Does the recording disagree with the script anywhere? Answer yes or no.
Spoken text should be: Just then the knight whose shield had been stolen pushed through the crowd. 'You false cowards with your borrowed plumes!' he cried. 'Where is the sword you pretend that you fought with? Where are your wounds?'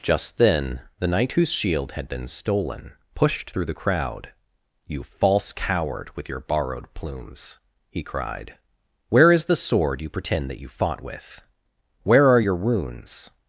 yes